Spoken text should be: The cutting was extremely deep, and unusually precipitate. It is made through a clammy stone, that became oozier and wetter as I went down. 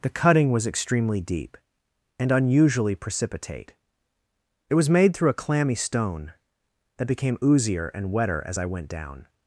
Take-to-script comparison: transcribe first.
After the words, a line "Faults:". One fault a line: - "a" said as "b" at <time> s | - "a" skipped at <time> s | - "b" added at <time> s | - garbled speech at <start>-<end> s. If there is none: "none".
The cutting was extremely deep, and unusually precipitate. It was made through a clammy stone, that became oozier and wetter as I went down.
Faults:
- "is" said as "was" at 4.8 s